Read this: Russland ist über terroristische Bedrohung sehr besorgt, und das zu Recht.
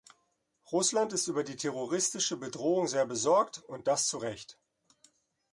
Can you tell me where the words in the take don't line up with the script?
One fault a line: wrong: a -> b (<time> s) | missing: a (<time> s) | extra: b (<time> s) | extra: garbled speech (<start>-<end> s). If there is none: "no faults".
extra: die (1.4 s)